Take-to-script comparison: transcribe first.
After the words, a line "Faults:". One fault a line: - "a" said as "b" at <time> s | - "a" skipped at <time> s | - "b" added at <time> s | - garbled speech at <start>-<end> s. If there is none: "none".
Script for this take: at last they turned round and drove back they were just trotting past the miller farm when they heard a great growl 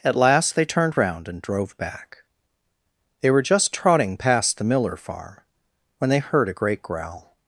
at last they turned round and drove back they were just trotting past the miller farm when they heard a great growl
Faults:
none